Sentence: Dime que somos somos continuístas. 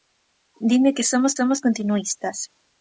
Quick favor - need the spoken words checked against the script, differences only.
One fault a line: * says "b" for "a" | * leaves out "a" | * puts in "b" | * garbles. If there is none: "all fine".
all fine